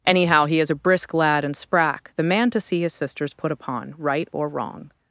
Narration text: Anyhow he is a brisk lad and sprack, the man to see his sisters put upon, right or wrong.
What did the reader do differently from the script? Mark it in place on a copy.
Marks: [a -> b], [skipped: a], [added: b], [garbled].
Anyhow he is a brisk lad and sprack, the man to see his sisters put upon, right or wrong.